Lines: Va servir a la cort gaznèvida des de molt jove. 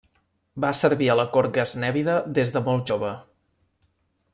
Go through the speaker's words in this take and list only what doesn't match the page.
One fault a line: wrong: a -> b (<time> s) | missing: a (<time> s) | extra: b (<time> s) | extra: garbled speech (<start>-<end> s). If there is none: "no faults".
no faults